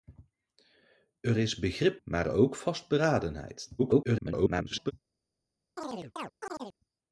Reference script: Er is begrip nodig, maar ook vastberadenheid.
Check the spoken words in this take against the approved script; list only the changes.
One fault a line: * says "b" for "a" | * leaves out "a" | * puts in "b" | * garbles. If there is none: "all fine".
* leaves out "nodig"
* garbles